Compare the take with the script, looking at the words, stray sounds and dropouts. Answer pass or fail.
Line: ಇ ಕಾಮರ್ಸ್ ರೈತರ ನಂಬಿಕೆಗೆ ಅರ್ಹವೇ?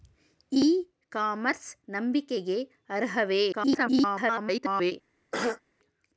fail